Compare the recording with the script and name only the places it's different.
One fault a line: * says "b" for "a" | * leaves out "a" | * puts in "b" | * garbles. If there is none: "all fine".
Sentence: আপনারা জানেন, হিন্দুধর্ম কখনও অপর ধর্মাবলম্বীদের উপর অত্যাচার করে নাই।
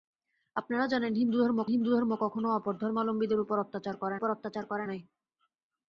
* puts in "হিন্দুধর্ম"
* puts in "উপর অত্যাচার করে"